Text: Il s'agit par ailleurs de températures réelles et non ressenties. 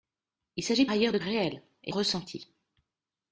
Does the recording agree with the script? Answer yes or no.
no